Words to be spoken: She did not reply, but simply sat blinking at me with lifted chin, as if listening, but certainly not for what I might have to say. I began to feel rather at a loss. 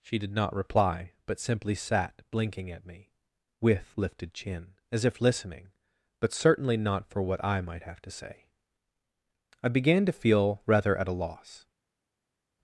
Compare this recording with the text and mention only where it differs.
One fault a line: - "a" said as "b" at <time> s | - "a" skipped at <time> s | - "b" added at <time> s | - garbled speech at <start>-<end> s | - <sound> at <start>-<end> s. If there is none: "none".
none